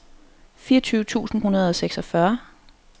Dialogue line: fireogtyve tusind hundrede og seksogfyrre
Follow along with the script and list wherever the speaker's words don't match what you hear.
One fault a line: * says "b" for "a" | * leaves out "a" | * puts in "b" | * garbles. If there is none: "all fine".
all fine